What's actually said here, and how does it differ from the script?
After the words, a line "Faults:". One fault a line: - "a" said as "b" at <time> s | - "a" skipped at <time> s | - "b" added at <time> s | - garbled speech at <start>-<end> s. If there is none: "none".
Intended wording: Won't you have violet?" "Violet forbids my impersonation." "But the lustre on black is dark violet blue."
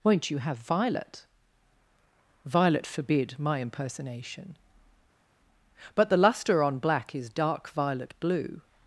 Won't you have violet?" "Violet forbid my impersonation." "But the lustre on black is dark violet blue."
Faults:
- "forbids" said as "forbid" at 2.9 s